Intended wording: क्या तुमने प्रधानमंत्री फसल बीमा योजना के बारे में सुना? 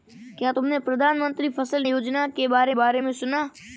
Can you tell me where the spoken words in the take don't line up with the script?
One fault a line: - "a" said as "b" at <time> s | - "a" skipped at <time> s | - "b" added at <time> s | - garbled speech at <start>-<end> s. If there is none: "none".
- "बीमा" skipped at 1.8 s
- "बारे" added at 2.7 s